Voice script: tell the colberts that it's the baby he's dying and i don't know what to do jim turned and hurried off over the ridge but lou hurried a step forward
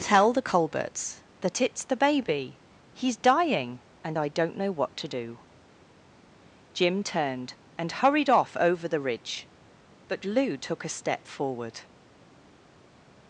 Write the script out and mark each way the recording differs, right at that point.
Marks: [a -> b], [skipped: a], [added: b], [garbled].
tell the colberts that it's the baby he's dying and i don't know what to do jim turned and hurried off over the ridge but lou [hurried -> took] a step forward